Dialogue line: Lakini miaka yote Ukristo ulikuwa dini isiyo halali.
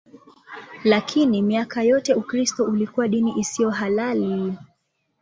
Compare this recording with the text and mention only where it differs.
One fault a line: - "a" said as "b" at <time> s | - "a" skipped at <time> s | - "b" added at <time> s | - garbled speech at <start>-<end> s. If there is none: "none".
none